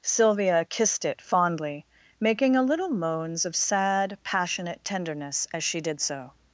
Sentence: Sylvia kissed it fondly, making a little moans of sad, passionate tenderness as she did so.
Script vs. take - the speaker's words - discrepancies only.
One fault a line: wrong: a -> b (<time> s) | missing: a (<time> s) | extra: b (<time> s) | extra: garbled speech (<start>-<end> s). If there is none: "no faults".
no faults